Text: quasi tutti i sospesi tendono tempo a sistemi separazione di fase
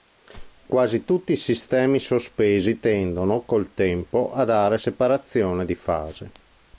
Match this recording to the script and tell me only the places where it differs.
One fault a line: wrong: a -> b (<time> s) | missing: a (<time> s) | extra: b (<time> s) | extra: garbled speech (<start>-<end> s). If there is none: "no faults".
extra: sistemi (1.4 s)
extra: col (3.5 s)
wrong: sistemi -> dare (4.5 s)